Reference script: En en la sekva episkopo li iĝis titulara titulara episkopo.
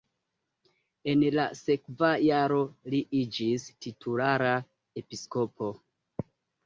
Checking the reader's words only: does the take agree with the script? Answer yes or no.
no